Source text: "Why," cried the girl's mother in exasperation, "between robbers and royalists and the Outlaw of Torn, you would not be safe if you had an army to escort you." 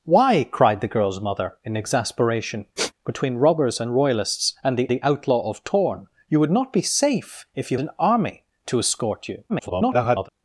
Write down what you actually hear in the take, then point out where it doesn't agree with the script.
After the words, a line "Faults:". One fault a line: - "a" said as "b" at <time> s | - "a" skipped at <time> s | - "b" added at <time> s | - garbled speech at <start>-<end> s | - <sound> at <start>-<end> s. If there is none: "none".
"Why," cried the girl's mother in exasperation, "between robbers and royalists and the the Outlaw of Torn, you would not be safe if you an army to escort you." [garbled]
Faults:
- sniff at 2.8-2.9 s
- "the" added at 4.9 s
- "had" skipped at 7.8 s
- garbled speech at 9.5-10.3 s